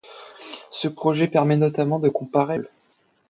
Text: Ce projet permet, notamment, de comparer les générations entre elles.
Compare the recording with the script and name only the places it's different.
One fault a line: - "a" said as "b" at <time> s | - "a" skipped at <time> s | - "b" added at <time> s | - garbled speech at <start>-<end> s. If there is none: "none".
- "les générations entre" skipped at 2.6 s